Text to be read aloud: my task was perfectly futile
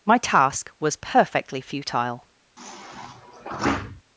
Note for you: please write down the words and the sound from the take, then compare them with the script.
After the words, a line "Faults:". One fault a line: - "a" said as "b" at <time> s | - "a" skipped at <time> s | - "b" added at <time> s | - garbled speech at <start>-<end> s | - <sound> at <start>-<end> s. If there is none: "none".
my task was perfectly futile
Faults:
- sigh at 2.6-4.0 s